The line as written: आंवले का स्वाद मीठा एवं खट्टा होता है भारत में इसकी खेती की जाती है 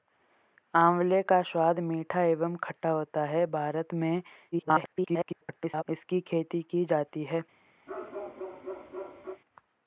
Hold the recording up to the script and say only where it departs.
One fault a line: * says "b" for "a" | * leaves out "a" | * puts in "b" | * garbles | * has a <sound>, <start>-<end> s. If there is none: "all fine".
* garbles
* has a bark, 7.9-9.4 s